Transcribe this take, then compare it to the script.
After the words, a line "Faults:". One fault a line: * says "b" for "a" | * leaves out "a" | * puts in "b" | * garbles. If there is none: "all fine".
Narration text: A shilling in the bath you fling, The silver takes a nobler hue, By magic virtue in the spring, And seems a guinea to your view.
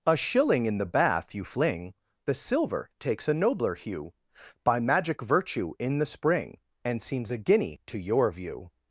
A shilling in the bath you fling, The silver takes a nobler hue, By magic virtue in the spring, And seems a guinea to your view.
Faults:
all fine